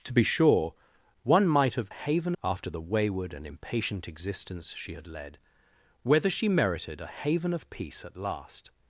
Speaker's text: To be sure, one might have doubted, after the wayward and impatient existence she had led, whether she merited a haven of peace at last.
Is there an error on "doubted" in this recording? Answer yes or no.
yes